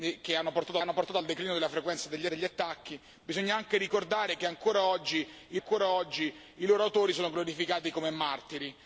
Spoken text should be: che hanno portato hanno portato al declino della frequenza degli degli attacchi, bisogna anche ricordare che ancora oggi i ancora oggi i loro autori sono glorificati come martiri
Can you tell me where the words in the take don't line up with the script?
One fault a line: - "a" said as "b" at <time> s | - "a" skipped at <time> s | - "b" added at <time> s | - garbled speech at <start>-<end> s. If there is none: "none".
none